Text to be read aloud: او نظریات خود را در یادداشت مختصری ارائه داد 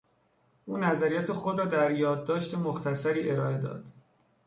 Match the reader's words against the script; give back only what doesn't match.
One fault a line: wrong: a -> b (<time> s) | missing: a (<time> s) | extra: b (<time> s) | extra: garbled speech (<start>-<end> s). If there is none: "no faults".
no faults